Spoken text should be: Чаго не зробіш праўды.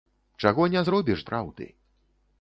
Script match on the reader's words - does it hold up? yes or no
yes